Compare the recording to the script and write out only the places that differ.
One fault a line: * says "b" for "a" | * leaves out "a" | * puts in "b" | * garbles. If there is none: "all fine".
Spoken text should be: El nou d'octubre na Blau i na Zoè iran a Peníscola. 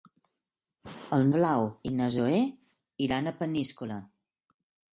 * leaves out "nou d'octubre na"